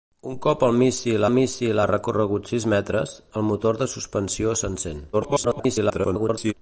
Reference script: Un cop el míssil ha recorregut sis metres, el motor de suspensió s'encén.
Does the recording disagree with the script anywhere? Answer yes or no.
yes